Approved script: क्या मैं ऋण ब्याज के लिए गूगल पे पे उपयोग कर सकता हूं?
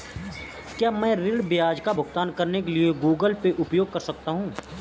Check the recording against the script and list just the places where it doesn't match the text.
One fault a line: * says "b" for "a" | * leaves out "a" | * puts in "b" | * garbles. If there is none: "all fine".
* puts in "का भुगतान करने"
* leaves out "पे"